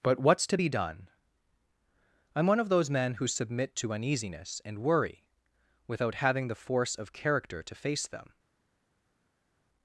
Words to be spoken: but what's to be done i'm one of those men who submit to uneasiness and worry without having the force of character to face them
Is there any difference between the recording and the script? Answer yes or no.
no